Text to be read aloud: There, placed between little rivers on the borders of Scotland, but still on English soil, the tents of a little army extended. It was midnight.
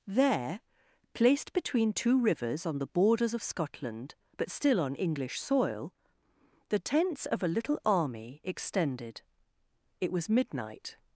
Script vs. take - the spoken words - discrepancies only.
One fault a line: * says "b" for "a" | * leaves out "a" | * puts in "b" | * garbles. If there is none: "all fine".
* says "two" for "little"